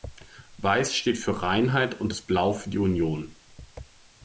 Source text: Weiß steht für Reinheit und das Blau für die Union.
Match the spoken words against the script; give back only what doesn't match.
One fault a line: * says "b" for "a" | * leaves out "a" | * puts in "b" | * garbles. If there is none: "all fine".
all fine